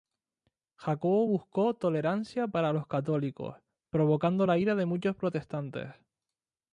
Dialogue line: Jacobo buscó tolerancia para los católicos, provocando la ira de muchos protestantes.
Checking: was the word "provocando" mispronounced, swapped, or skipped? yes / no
no